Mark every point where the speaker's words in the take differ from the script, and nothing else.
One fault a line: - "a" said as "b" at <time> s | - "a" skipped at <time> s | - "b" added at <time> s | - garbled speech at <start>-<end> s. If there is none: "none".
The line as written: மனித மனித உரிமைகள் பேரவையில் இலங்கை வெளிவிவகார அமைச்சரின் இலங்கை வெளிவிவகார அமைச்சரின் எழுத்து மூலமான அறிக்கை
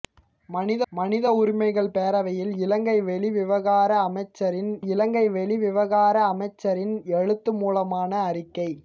none